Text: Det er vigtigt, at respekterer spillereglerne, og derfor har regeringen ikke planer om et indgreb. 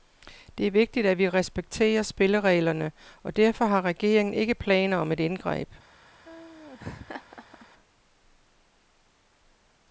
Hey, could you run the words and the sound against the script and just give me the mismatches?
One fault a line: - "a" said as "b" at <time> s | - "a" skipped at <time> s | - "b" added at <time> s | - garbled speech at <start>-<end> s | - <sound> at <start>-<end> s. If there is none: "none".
- "vi" added at 1.2 s
- laugh at 6.2-7.7 s